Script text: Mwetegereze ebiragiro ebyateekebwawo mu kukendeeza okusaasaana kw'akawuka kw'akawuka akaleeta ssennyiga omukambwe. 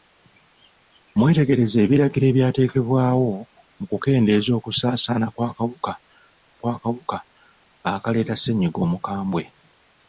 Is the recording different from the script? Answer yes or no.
no